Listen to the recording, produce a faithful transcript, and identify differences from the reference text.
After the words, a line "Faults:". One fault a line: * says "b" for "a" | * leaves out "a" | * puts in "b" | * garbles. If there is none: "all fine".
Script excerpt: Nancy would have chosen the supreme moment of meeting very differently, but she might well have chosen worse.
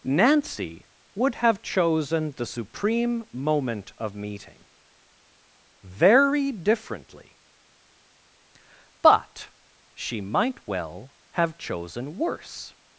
Nancy would have chosen the supreme moment of meeting very differently, but she might well have chosen worse.
Faults:
all fine